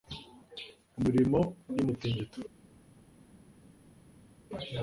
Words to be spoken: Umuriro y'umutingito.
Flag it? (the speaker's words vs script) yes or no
no